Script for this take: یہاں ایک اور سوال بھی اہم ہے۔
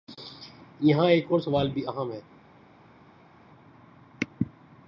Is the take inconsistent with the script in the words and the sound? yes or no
no